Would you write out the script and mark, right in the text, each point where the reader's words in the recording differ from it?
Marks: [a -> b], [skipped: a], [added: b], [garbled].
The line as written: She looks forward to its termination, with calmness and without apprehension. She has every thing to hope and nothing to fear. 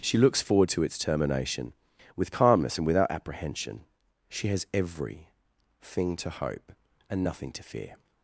She looks forward to its termination, with calmness and without apprehension. She has every thing to hope and nothing to fear.